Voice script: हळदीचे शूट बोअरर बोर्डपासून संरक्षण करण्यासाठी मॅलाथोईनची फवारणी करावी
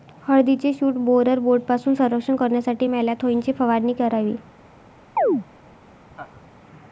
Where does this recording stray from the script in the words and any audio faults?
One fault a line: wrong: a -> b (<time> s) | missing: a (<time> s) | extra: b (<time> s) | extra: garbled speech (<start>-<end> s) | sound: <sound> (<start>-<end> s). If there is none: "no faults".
sound: chirp (5.2-5.4 s)
sound: laugh (6.1-6.5 s)